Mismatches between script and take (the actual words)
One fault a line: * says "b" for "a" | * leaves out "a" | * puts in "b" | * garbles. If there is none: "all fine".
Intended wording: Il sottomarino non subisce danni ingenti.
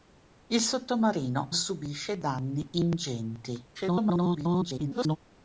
* leaves out "non"
* garbles